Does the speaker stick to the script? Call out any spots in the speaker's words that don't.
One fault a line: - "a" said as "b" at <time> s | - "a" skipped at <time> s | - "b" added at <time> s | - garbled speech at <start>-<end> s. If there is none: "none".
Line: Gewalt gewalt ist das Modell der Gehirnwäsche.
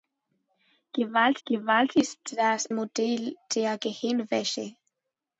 none